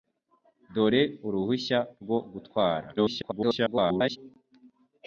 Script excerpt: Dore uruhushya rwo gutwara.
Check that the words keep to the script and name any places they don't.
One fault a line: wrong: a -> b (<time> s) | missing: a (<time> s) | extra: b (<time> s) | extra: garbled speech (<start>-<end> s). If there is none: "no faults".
extra: garbled speech (3.0-4.2 s)